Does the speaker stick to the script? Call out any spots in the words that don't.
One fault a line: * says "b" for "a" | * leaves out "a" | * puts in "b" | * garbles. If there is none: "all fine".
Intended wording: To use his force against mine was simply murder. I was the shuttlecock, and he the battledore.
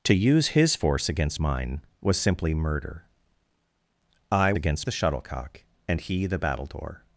* says "against" for "was"